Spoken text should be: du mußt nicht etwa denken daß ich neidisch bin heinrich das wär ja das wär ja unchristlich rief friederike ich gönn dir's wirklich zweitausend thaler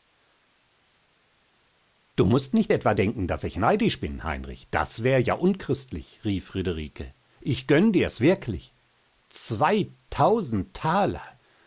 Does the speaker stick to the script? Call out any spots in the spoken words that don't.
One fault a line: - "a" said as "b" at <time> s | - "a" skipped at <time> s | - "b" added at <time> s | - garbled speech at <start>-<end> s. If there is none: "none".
- "das wär ja" skipped at 5.3 s